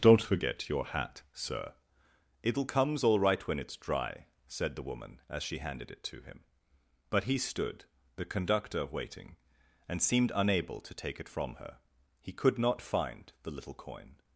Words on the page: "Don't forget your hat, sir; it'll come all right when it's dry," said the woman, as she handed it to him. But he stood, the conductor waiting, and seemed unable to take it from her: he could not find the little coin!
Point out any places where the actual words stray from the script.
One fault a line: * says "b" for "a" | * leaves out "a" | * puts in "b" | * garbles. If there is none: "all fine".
* says "comes" for "come"